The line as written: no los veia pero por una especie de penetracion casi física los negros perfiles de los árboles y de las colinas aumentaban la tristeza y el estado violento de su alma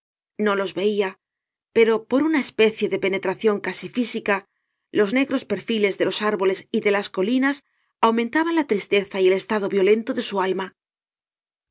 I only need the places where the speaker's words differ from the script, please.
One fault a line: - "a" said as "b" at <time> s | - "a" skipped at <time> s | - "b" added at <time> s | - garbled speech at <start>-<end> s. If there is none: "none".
none